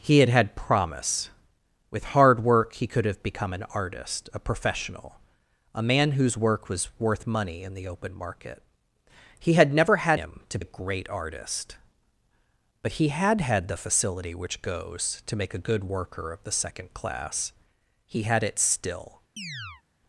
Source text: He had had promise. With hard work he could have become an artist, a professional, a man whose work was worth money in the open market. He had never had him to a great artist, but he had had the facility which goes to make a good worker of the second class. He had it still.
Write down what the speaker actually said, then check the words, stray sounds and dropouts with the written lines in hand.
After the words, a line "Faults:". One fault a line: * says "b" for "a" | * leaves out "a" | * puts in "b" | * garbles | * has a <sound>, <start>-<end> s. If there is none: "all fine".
He had had promise. With hard work he could have become an artist, a professional, a man whose work was worth money in the open market. He had never had him to a great artist, but he had had the facility which goes to make a good worker of the second class. He had it still.
Faults:
* has a chirp, 19.4-19.8 s